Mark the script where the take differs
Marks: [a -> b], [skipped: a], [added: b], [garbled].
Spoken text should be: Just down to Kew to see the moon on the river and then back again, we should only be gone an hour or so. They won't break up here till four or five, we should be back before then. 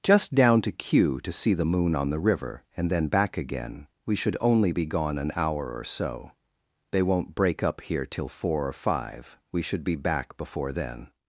Just down to Kew to see the moon on the river and then back again, we should only be gone an hour or so. They won't break up here till four or five, we should be back before then.